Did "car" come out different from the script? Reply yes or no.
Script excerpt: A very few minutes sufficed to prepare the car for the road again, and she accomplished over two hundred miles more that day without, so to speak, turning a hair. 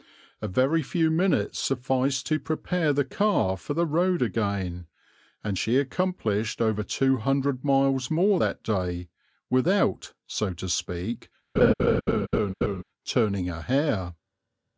no